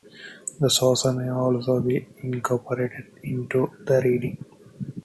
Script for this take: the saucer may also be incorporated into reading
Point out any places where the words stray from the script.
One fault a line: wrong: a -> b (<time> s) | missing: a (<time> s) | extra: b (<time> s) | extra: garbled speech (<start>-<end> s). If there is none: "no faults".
extra: the (3.9 s)